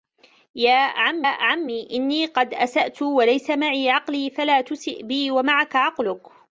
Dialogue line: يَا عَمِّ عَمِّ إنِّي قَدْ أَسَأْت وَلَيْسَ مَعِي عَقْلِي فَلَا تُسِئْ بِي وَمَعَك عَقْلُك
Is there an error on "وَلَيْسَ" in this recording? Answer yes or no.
no